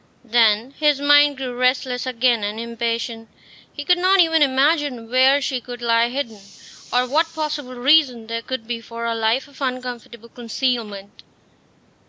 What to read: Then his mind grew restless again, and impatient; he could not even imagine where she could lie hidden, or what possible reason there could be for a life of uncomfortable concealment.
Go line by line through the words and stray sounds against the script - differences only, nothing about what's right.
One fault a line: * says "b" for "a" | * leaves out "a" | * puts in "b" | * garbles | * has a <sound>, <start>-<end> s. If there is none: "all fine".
all fine